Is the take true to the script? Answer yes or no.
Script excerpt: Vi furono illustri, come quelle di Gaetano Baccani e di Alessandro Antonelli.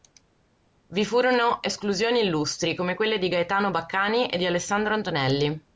no